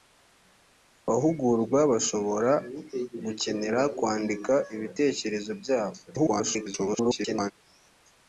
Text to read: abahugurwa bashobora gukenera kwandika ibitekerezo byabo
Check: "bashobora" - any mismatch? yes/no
no